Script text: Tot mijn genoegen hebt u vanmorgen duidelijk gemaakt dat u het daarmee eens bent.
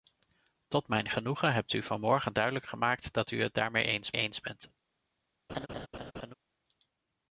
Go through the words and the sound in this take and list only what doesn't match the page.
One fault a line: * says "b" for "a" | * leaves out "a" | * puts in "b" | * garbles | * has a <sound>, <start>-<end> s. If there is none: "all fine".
* puts in "eens"
* has a laugh, 5.5-6.3 s